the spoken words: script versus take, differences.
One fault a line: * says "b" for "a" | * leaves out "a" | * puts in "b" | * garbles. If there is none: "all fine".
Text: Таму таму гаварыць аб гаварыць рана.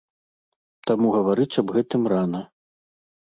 * leaves out "таму"
* says "гэтым" for "гаварыць"